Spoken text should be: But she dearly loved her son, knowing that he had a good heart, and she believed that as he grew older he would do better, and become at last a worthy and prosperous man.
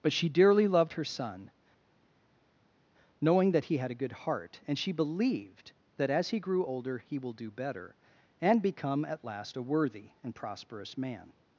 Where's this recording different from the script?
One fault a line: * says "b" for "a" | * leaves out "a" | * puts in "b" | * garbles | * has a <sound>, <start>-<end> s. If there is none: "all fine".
* says "will" for "would"